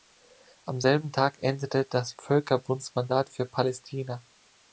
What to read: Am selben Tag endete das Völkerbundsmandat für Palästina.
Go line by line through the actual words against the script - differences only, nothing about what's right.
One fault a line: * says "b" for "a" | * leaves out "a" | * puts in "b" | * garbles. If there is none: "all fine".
all fine